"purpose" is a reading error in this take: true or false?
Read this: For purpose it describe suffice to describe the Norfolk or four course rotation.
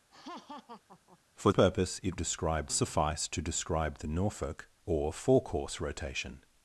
false